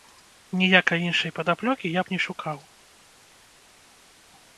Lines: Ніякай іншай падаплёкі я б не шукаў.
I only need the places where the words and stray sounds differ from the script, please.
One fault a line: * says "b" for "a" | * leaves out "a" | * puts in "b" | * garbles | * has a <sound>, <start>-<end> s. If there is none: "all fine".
all fine